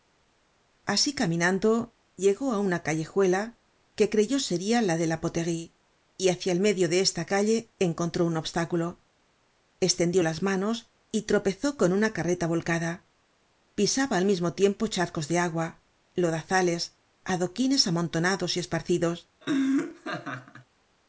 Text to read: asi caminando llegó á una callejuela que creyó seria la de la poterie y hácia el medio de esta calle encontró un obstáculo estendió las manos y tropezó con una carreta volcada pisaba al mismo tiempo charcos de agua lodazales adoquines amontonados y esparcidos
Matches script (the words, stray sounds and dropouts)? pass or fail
fail